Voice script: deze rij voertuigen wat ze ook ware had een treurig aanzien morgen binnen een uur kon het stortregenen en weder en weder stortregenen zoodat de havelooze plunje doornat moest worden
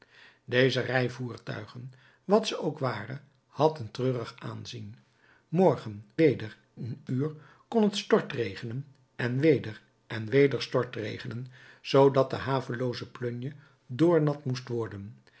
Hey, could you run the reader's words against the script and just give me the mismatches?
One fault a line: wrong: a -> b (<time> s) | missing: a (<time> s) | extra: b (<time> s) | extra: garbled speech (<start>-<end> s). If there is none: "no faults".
wrong: binnen -> weder (6.2 s)